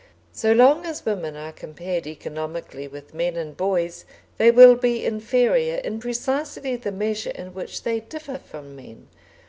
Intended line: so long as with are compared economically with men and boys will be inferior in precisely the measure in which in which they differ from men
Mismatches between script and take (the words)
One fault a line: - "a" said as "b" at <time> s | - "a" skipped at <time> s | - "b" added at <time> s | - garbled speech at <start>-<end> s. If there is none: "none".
- "with" said as "women" at 1.1 s
- "they" added at 4.4 s
- "in which" skipped at 7.8 s